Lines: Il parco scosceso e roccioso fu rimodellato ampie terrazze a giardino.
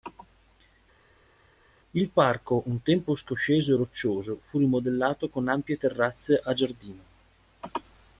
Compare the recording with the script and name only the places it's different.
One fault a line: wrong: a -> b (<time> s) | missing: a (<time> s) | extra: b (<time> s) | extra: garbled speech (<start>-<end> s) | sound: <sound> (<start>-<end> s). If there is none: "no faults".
extra: un tempo (2.7 s)
extra: con (5.3 s)